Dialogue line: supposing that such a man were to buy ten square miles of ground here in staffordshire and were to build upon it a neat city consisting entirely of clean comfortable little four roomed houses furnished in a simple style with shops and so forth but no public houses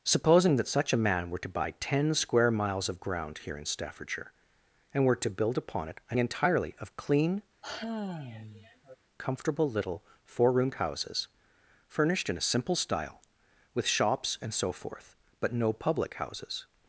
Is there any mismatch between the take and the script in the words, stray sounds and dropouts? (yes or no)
yes